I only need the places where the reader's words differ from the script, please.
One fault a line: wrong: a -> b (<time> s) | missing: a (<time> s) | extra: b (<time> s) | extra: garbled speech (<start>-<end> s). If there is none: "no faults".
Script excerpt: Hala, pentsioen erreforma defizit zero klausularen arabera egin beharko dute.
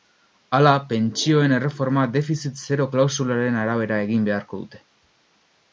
no faults